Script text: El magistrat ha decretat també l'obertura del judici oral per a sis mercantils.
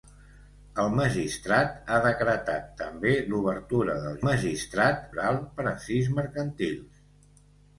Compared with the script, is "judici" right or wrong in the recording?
wrong